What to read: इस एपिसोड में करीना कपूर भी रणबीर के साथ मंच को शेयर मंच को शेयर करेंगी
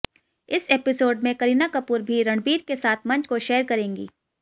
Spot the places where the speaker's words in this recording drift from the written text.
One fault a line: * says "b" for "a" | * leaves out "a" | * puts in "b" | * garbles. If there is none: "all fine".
* leaves out "मंच को शेयर"